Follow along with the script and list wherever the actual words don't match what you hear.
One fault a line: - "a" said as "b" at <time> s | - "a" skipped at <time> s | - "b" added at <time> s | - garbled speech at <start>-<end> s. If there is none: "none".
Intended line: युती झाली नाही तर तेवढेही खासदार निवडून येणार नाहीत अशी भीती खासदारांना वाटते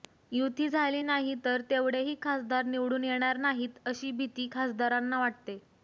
none